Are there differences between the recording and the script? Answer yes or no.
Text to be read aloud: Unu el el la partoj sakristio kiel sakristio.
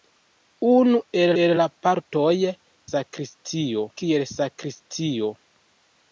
no